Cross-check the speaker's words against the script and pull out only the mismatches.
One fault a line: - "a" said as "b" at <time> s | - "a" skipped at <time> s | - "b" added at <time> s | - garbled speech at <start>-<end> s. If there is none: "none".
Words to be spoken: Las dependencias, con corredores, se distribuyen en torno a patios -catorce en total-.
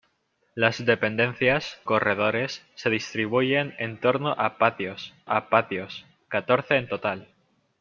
- "con" skipped at 1.8 s
- "a patios" added at 5.3 s